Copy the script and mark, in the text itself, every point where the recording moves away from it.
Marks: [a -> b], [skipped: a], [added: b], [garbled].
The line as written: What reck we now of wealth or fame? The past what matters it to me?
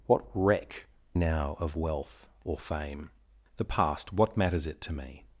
What reck [skipped: we] now of wealth or fame? The past what matters it to me?